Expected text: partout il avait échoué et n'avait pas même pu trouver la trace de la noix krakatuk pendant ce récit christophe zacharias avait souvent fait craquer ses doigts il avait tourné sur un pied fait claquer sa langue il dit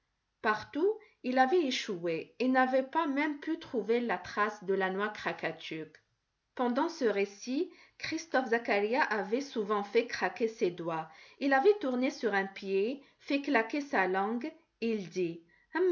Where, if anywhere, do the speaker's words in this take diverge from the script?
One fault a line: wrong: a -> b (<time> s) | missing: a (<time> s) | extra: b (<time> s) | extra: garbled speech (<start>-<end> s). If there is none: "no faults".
no faults